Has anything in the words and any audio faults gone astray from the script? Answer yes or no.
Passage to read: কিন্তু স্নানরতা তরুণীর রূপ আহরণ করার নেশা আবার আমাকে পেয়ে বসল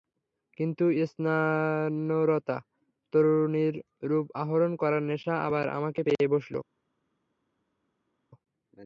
no